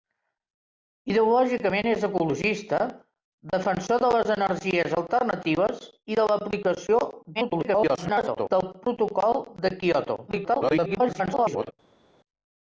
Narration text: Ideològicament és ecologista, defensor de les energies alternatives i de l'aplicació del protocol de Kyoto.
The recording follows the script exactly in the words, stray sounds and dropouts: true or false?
false